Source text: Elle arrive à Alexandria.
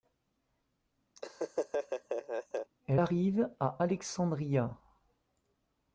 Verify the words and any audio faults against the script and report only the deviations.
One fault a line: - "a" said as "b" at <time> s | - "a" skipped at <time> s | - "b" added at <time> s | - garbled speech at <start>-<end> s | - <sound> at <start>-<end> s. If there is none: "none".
- laugh at 1.2-2.7 s